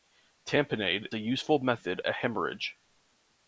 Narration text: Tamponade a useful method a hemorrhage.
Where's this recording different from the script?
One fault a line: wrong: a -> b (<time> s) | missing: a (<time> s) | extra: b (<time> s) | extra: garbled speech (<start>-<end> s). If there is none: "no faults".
no faults